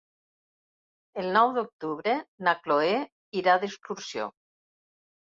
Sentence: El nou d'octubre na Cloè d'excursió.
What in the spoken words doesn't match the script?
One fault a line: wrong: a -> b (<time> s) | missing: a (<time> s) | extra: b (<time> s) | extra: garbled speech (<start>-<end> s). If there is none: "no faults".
extra: irà (3.4 s)